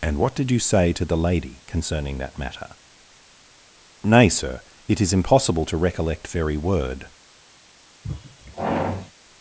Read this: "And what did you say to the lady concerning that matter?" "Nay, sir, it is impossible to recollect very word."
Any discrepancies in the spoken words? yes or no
no